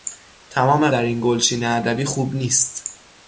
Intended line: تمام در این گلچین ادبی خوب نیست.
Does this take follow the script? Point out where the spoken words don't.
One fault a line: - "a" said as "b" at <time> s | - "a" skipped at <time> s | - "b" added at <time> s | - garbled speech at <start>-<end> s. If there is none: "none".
none